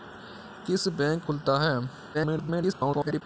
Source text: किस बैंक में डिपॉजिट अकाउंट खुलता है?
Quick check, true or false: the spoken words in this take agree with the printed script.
false